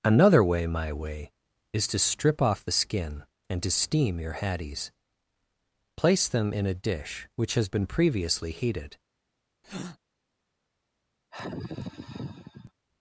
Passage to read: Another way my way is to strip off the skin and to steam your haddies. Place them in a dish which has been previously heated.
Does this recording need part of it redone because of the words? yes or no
no